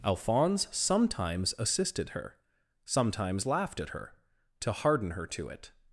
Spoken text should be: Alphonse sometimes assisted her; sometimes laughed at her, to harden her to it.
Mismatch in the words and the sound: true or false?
false